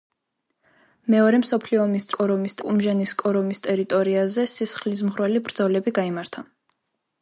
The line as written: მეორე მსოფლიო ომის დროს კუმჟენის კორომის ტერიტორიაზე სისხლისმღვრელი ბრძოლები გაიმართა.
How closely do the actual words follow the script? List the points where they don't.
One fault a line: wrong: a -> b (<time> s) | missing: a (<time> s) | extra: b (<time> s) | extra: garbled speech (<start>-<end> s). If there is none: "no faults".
wrong: დროს -> კორომის (2.2 s)